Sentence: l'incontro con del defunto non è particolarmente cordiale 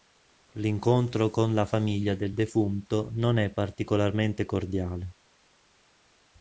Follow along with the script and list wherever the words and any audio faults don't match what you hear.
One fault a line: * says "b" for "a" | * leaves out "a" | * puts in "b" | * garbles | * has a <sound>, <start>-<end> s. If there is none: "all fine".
* puts in "la famiglia"